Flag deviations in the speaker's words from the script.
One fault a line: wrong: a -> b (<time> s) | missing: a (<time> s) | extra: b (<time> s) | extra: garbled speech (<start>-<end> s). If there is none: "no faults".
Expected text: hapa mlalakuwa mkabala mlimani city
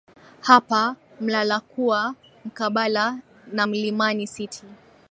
extra: na (3.5 s)